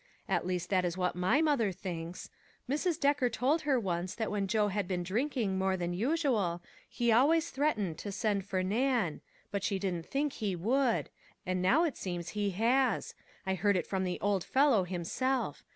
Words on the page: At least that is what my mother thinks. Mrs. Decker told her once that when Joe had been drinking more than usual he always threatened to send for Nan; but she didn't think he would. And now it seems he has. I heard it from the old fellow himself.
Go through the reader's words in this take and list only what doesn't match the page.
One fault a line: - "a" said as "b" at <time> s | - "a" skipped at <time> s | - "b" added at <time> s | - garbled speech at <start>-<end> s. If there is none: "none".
none